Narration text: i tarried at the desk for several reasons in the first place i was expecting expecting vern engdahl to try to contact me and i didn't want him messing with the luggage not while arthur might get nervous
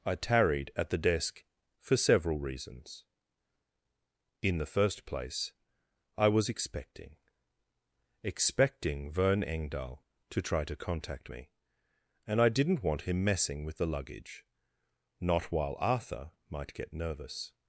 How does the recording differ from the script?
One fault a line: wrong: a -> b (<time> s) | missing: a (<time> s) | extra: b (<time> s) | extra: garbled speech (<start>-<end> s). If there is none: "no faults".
no faults